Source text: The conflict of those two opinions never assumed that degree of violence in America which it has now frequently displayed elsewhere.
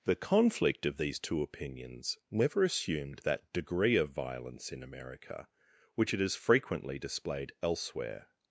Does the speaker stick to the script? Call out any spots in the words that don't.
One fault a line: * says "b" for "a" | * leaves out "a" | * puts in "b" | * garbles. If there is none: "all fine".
* says "these" for "those"
* leaves out "now"